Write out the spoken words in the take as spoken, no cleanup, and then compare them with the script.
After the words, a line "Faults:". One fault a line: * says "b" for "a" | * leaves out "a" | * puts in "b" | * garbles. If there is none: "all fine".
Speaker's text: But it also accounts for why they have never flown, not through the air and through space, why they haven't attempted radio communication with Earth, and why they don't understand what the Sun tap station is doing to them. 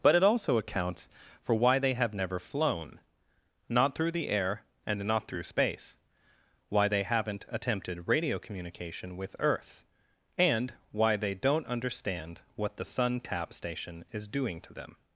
But it also accounts for why they have never flown, not through the air and not through space, why they haven't attempted radio communication with Earth, and why they don't understand what the Sun tap station is doing to them.
Faults:
* puts in "not"